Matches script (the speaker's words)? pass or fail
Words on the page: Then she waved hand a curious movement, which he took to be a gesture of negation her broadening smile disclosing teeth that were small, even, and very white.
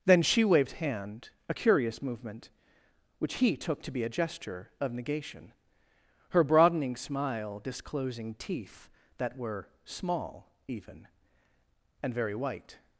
pass